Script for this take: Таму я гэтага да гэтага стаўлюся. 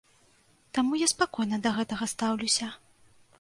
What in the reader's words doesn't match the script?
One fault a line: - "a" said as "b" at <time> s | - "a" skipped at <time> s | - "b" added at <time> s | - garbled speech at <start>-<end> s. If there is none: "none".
- "гэтага" said as "спакойна" at 1.1 s